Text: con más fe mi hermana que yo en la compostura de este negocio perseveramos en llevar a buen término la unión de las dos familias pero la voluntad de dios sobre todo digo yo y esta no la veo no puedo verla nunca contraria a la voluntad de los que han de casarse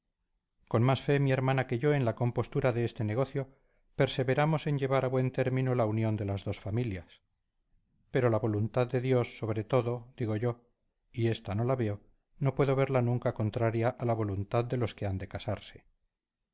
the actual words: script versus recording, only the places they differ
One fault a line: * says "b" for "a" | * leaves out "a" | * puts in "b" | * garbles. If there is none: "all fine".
all fine